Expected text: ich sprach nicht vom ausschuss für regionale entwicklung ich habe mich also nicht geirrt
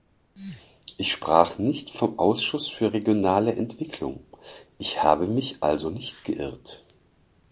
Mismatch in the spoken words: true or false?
false